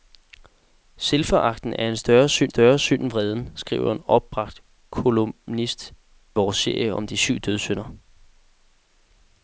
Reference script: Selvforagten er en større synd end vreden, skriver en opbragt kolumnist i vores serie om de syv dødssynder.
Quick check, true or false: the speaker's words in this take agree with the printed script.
false